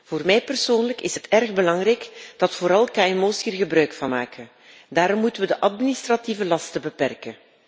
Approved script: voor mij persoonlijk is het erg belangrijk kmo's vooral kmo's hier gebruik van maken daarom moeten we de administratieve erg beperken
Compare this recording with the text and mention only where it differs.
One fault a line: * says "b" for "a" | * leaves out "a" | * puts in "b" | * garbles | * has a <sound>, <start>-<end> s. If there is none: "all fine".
* says "dat" for "kmo's"
* says "lasten" for "erg"